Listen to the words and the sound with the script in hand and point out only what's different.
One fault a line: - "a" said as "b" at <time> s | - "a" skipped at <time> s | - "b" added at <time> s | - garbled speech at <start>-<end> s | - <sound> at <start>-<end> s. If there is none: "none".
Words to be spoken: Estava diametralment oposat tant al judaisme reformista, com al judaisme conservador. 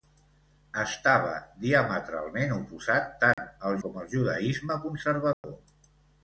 - dropout at 3.3-3.4 s
- "judaisme reformista" skipped at 3.8 s
- dropout at 5.3-5.4 s